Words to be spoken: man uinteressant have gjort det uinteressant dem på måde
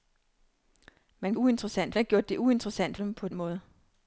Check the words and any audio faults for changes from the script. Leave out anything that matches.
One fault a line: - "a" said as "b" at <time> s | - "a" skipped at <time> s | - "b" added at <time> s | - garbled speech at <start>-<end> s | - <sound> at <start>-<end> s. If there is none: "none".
none